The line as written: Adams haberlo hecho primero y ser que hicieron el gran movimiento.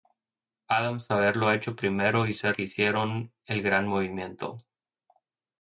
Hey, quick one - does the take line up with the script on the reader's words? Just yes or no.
yes